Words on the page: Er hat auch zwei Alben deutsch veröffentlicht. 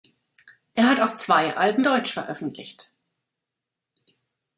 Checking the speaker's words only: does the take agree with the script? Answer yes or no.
yes